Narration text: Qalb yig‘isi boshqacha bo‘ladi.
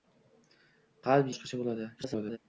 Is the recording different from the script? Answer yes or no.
yes